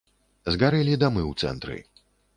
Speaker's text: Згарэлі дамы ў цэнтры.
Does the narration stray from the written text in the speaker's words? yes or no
no